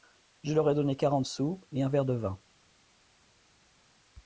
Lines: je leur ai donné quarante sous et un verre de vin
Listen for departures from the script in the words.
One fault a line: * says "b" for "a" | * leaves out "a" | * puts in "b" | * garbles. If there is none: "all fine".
all fine